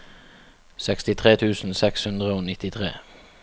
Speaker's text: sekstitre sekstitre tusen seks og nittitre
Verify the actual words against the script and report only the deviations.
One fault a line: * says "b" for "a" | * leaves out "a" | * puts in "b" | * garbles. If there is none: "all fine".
* leaves out "sekstitre"
* puts in "hundre"